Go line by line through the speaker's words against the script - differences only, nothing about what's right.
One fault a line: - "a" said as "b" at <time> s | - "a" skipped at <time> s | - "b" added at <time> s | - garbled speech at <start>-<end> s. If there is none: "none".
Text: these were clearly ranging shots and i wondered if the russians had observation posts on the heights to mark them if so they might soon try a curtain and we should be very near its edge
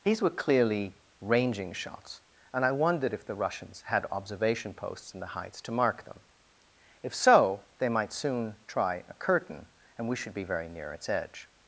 - "on" said as "in" at 5.1 s